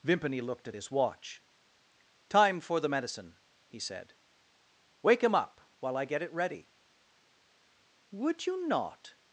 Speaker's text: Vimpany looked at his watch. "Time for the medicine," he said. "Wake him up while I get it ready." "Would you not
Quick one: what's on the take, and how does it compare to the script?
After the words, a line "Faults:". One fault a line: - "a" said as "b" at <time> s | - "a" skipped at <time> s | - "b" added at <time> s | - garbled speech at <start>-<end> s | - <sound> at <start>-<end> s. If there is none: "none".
Vimpany looked at his watch. "Time for the medicine," he said. "Wake him up while I get it ready." "Would you not
Faults:
none